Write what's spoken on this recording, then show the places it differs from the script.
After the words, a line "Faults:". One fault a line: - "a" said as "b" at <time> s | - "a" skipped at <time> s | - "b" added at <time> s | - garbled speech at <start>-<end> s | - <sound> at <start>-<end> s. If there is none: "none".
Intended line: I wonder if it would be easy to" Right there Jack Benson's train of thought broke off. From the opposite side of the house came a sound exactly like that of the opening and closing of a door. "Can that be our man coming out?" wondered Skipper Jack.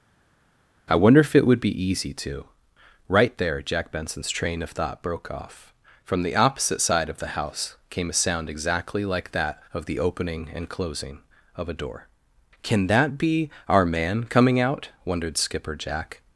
I wonder if it would be easy to" Right there Jack Benson's train of thought broke off. From the opposite side of the house came a sound exactly like that of the opening and closing of a door. "Can that be our man coming out?" wondered Skipper Jack.
Faults:
none